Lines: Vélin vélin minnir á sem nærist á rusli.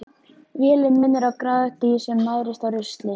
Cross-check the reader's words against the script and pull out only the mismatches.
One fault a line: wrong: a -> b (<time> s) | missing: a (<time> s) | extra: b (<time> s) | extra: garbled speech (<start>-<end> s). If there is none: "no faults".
missing: vélin (1.0 s)
extra: gráðugt dýr (1.4 s)